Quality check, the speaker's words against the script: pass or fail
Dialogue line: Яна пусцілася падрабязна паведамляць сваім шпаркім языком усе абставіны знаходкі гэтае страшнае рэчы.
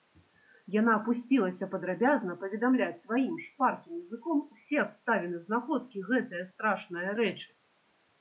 pass